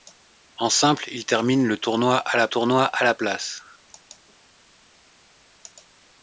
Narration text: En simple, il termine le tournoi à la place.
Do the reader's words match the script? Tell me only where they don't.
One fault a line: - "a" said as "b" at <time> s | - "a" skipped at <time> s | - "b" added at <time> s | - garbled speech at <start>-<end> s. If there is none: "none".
- "tournoi à la" added at 2.5 s